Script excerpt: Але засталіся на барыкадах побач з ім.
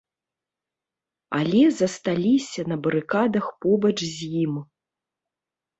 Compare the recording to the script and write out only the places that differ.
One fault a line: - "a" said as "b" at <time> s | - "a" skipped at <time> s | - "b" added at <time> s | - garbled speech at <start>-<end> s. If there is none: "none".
none